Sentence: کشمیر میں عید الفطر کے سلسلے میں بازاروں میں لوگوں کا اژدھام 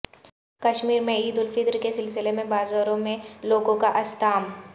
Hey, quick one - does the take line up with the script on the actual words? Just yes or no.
yes